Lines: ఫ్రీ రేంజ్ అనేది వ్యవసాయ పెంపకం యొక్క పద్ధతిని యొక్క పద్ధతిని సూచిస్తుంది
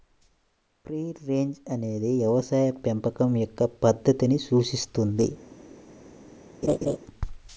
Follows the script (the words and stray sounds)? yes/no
no